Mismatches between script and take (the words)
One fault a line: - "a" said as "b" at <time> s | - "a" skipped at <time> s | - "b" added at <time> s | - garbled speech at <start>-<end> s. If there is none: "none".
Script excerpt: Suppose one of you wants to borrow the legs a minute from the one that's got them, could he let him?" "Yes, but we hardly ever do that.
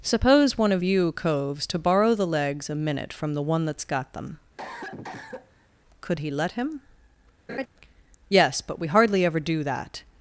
- "wants" said as "coves" at 1.2 s